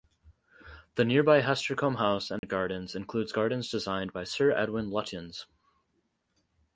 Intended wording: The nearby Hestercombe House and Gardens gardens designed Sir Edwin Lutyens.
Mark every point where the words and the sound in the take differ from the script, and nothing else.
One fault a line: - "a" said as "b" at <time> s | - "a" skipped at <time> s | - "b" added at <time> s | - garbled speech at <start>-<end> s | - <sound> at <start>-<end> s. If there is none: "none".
- dropout at 2.4-2.4 s
- "includes" added at 3.0 s
- "by" added at 4.1 s